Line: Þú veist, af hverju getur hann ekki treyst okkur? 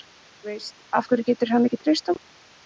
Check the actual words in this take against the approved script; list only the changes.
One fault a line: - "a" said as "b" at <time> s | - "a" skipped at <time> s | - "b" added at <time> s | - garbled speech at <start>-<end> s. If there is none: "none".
none